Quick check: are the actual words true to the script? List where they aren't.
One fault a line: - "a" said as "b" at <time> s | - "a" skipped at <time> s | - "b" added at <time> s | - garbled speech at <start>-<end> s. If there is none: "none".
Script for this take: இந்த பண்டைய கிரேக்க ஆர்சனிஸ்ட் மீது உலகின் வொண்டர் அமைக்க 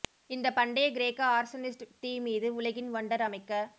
- "தீ" added at 2.0 s